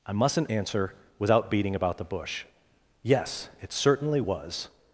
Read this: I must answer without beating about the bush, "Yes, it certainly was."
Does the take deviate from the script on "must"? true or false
true